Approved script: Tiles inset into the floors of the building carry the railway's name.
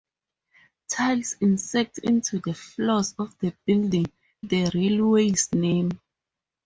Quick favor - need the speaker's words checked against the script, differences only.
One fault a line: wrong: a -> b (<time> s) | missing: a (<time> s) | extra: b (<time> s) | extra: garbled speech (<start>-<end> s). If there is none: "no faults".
missing: carry (4.1 s)